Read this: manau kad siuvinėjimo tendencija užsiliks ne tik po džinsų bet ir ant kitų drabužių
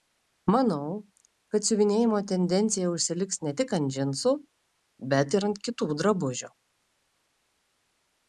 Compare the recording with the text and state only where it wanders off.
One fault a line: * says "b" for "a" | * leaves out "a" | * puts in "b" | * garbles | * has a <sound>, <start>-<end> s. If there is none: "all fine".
* says "ant" for "po"